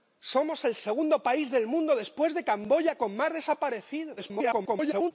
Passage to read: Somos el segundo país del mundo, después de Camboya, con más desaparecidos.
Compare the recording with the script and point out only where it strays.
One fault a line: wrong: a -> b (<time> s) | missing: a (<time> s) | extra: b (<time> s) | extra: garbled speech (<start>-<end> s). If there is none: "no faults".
extra: garbled speech (4.2-5.1 s)